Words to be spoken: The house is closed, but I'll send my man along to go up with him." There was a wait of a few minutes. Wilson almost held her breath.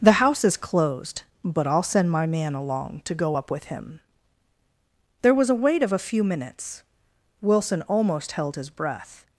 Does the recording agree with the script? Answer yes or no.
no